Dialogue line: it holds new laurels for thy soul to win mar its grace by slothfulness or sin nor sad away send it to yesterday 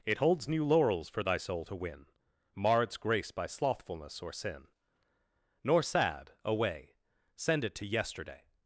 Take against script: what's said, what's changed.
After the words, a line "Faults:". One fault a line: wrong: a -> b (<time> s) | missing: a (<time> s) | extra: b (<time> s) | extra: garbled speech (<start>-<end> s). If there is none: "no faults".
it holds new laurels for thy soul to win mar its grace by slothfulness or sin nor sad away send it to yesterday
Faults:
no faults